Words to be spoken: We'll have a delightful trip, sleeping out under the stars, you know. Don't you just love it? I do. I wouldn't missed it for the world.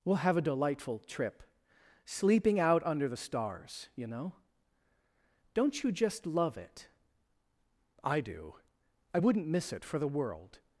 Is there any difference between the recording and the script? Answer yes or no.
yes